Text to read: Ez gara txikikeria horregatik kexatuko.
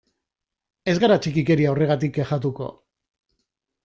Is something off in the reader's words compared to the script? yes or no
no